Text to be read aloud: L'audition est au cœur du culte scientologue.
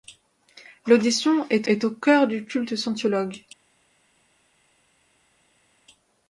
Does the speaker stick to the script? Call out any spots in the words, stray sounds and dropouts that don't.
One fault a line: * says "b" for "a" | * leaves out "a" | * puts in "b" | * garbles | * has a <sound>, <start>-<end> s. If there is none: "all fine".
* puts in "est"